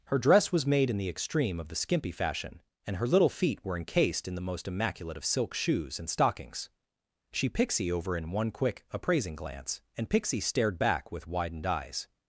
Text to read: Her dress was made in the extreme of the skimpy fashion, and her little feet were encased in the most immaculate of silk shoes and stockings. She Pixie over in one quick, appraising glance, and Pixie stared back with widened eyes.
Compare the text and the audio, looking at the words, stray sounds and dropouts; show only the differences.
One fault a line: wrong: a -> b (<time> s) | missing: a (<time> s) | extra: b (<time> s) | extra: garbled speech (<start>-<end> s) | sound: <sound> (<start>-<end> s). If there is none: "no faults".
no faults